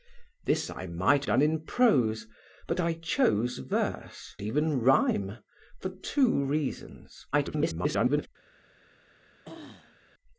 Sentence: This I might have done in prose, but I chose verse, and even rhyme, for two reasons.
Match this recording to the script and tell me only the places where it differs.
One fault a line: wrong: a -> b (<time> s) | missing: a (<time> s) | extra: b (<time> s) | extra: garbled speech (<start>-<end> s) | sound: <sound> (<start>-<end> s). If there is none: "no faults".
missing: have (1.2 s)
missing: and (4.3 s)
extra: garbled speech (7.3-8.3 s)
sound: throat clearing (9.4-10.0 s)